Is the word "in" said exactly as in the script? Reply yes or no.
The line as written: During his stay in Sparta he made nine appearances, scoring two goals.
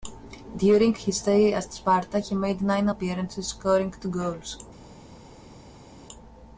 no